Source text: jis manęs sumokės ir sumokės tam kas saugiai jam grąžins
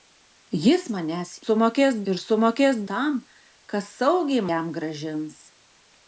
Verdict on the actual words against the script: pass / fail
pass